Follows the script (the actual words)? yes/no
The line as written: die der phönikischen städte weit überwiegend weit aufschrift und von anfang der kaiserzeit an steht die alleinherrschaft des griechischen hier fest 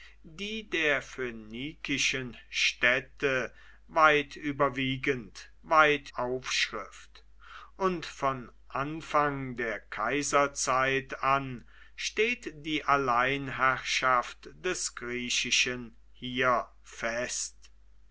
yes